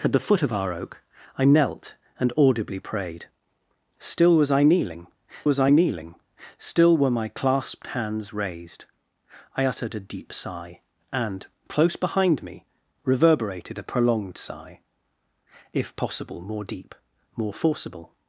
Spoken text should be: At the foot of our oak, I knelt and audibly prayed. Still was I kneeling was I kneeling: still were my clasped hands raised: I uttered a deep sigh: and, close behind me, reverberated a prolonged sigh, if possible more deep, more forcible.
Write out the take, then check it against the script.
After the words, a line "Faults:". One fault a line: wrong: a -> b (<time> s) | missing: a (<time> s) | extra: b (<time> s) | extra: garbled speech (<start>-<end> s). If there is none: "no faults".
At the foot of our oak, I knelt and audibly prayed. Still was I kneeling was I kneeling: still were my clasped hands raised: I uttered a deep sigh: and, close behind me, reverberated a prolonged sigh, if possible more deep, more forcible.
Faults:
no faults